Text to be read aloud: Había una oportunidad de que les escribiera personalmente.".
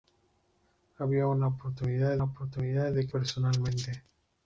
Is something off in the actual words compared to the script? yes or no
yes